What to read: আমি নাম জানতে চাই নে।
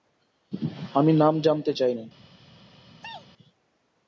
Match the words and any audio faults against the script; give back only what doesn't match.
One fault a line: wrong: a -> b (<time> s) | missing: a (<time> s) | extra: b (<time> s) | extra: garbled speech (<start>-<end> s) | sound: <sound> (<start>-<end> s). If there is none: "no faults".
sound: sneeze (3.0-3.3 s)